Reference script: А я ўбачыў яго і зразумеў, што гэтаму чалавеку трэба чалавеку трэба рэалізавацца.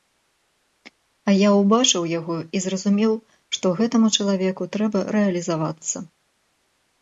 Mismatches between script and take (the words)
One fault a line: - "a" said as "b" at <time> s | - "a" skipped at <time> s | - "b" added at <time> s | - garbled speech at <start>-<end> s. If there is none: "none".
- "чалавеку трэба" skipped at 5.0 s